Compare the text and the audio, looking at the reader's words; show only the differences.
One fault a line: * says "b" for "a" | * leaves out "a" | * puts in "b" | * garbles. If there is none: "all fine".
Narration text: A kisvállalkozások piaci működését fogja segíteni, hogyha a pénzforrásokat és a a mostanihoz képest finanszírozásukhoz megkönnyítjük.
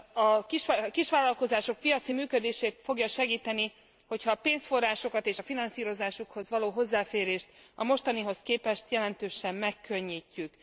* puts in "finanszírozásukhoz való hozzáférést"
* says "jelentősen" for "finanszírozásukhoz"